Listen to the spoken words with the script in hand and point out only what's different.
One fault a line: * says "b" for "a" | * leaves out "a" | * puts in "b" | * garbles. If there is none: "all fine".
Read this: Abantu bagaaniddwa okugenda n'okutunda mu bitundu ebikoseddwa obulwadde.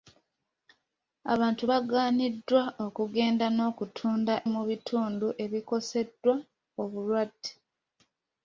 all fine